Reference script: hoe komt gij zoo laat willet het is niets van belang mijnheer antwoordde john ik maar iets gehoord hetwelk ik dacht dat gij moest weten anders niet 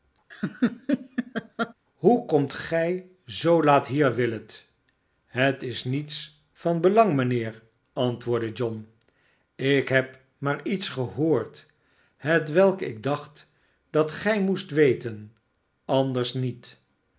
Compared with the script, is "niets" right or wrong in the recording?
right